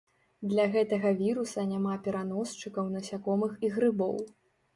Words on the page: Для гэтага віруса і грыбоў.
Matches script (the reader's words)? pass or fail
fail